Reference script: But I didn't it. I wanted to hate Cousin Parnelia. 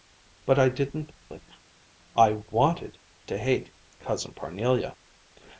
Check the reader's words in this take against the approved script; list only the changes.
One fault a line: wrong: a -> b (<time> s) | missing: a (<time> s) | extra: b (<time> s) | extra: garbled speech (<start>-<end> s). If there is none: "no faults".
no faults